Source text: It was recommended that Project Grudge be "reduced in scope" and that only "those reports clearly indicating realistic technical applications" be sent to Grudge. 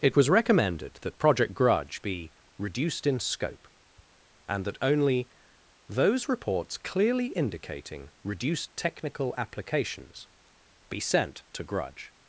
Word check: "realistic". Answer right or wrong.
wrong